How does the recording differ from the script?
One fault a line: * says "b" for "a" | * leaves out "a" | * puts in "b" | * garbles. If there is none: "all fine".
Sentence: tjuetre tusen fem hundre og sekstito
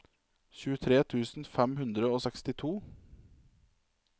all fine